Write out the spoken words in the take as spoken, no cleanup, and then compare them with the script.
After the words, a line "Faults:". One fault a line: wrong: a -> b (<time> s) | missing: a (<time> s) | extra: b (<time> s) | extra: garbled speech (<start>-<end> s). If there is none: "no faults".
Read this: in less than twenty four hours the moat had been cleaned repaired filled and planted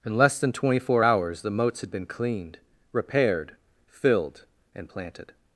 in less than twenty four hours the moats had been cleaned repaired filled and planted
Faults:
wrong: moat -> moats (1.5 s)